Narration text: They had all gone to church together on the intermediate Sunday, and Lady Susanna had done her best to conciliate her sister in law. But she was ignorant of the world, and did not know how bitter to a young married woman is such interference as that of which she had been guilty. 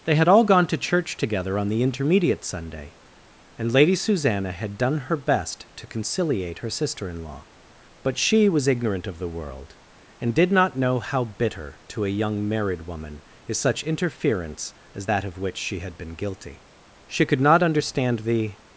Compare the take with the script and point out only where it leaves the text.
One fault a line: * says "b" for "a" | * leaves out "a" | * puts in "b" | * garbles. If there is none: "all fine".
* puts in "She could not understand the"